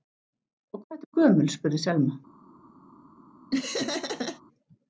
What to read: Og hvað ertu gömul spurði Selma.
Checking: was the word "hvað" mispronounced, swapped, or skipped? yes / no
no